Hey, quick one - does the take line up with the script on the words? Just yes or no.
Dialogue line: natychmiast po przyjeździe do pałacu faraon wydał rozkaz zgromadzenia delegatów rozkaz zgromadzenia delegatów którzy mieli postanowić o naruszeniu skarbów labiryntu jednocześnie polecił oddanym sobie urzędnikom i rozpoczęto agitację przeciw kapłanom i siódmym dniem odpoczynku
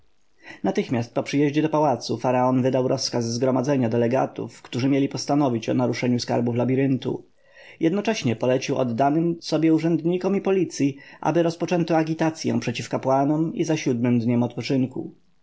no